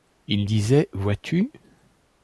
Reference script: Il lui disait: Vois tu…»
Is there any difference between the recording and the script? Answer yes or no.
yes